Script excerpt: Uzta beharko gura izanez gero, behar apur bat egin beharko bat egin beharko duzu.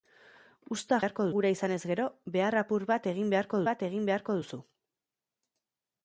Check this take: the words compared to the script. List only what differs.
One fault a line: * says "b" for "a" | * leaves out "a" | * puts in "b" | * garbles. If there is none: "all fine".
all fine